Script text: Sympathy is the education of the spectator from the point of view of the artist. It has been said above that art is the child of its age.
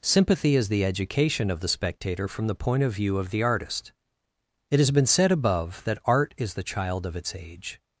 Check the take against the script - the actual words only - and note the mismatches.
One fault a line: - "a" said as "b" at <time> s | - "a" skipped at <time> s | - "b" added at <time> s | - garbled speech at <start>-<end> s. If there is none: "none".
none